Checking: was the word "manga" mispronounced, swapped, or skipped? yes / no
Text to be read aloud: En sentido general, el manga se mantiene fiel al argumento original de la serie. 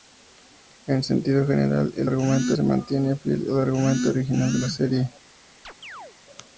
yes